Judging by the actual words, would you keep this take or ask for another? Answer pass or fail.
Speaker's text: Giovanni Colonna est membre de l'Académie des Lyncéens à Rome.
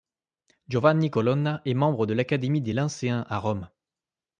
pass